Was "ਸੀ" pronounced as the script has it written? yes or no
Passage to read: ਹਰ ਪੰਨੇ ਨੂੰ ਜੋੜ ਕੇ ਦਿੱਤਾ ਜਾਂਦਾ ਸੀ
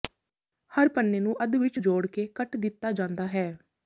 no